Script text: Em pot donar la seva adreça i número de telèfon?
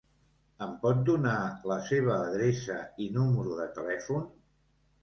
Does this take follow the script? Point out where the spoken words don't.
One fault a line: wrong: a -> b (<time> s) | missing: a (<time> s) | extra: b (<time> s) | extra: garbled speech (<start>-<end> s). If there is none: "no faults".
no faults